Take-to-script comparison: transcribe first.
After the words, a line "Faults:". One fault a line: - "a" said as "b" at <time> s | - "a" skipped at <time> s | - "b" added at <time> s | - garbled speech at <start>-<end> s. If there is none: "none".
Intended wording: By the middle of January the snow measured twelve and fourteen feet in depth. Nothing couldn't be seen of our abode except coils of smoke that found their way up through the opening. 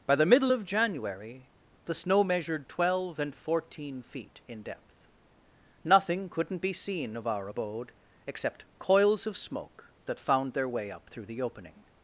By the middle of January the snow measured twelve and fourteen feet in depth. Nothing couldn't be seen of our abode except coils of smoke that found their way up through the opening.
Faults:
none